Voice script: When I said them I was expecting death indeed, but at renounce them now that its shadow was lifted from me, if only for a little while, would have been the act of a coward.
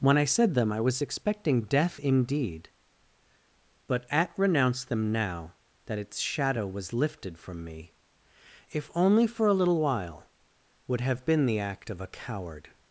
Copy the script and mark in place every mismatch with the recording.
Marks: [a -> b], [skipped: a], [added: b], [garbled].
When I said them I was expecting death indeed, but at renounce them now that its shadow was lifted from me, if only for a little while, would have been the act of a coward.